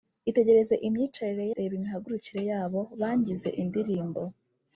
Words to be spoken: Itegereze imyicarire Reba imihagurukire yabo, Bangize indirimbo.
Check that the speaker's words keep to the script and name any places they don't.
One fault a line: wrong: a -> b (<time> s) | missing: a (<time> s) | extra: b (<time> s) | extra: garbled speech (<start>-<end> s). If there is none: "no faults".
no faults